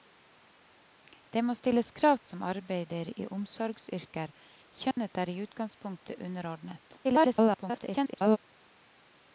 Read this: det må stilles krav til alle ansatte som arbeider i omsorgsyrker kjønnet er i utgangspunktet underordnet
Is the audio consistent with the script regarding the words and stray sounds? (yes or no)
no